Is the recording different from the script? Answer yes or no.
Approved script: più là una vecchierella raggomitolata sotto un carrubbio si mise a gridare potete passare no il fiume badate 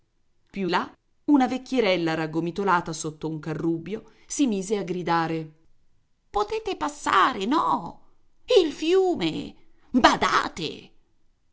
no